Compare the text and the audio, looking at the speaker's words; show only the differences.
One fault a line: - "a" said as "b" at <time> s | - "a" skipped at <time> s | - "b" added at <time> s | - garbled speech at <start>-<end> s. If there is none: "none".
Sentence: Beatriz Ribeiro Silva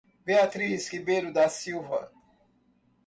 - "da" added at 1.3 s